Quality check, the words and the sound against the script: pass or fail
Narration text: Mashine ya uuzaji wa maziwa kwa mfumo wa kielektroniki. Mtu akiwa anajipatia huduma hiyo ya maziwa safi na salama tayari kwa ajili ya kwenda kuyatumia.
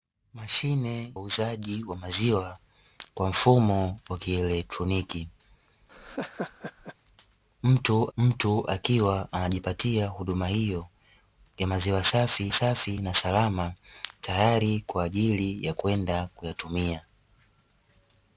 fail